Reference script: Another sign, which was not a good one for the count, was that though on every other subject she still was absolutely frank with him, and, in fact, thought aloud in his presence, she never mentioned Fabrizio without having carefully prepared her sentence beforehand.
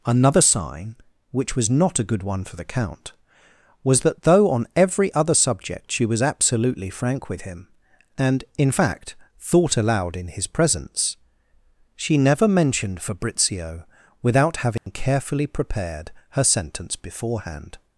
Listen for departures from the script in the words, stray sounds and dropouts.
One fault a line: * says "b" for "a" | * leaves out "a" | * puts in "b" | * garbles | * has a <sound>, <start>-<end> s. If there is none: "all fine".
* leaves out "still"
* has a dropout, 14.8-14.9 s